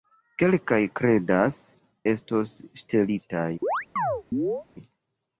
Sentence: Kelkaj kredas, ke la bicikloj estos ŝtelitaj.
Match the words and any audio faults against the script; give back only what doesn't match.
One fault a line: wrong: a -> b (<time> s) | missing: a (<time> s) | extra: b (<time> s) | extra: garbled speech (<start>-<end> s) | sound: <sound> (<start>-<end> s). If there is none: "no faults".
missing: ke la bicikloj (1.6 s)
sound: chirp (3.6-4.7 s)